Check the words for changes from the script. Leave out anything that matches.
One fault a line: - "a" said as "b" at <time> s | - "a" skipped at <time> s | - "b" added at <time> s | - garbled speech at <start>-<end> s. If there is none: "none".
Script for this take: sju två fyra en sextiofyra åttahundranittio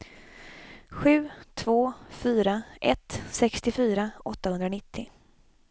- "en" said as "ett" at 2.8 s